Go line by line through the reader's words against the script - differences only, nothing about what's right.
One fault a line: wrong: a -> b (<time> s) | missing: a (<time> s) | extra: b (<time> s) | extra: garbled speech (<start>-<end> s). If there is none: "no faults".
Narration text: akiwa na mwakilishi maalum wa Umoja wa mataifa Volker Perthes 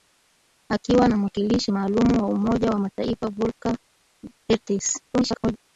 extra: garbled speech (5.1-5.6 s)